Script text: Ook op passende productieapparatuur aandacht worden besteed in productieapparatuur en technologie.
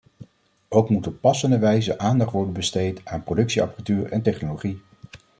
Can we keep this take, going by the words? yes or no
no